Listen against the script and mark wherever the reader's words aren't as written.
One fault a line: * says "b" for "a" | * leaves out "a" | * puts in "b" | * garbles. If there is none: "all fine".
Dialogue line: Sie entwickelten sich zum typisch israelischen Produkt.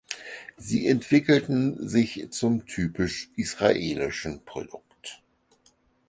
all fine